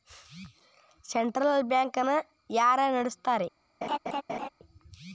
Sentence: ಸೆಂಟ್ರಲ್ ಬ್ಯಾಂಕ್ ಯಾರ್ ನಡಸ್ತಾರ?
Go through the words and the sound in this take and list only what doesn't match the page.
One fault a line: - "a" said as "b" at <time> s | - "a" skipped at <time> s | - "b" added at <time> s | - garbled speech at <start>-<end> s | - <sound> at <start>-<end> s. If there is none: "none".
- "ನ" added at 2.0 s
- laugh at 3.8-4.5 s